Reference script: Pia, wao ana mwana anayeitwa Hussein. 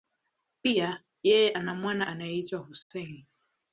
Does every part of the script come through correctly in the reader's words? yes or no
no